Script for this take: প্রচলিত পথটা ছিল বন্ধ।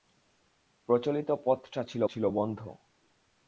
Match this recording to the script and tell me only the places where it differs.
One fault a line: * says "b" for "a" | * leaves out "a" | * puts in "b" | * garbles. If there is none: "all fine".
* puts in "ছিল"